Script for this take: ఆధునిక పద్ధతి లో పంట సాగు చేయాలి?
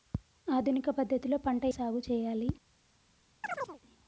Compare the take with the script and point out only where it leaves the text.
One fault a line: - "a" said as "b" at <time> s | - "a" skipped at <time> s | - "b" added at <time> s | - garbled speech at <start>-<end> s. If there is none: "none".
none